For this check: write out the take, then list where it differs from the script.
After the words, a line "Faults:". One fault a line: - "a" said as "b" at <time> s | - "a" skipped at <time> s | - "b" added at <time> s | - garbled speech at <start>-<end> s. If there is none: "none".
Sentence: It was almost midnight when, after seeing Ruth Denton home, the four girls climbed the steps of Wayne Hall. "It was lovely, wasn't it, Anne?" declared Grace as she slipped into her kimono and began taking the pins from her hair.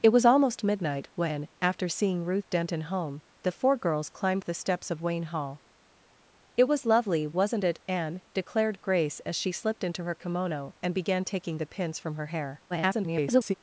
It was almost midnight when, after seeing Ruth Denton home, the four girls climbed the steps of Wayne Hall. "It was lovely, wasn't it, Anne?" declared Grace as she slipped into her kimono and began taking the pins from her hair. [garbled]
Faults:
- garbled speech at 12.7-13.5 s